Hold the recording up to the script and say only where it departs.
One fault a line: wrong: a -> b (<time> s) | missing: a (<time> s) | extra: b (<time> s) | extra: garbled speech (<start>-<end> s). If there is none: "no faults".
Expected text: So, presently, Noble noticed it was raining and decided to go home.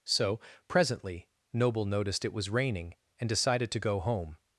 no faults